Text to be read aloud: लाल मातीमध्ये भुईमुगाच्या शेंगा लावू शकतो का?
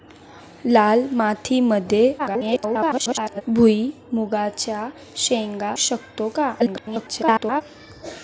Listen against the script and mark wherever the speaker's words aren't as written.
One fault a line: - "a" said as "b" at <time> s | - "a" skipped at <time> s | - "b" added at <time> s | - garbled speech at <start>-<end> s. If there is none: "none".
- garbled speech at 2.2-3.4 s
- "लावू" skipped at 5.7 s
- garbled speech at 6.6-7.6 s